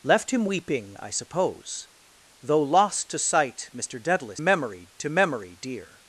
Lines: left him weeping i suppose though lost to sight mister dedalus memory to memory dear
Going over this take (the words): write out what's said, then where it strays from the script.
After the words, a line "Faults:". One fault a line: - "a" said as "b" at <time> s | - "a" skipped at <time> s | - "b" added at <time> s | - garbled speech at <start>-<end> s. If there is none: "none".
left him weeping i suppose though lost to sight mister dedalus memory to memory dear
Faults:
none